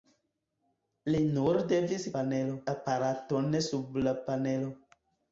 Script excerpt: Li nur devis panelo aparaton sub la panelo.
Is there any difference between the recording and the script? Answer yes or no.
no